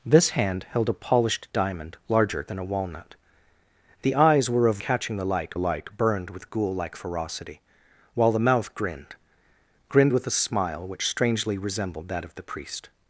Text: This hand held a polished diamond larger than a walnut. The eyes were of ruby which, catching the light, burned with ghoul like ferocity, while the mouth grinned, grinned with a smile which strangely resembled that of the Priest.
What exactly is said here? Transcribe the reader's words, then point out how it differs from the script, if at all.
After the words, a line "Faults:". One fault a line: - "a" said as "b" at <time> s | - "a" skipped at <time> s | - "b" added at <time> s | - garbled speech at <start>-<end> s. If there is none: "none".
This hand held a polished diamond larger than a walnut. The eyes were of catching the light light, burned with ghoul like ferocity, while the mouth grinned, grinned with a smile which strangely resembled that of the Priest.
Faults:
- "ruby which" skipped at 4.8 s
- "light" added at 5.6 s